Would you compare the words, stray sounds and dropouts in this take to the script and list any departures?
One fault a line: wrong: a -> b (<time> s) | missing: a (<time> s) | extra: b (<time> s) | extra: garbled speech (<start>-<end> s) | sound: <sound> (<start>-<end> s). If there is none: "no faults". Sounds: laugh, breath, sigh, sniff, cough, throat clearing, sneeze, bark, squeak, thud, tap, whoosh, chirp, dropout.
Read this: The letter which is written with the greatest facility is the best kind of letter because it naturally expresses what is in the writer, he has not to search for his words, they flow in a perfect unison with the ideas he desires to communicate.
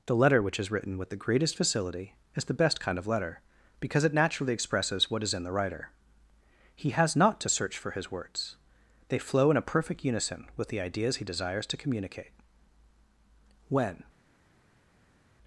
extra: When (13.7 s)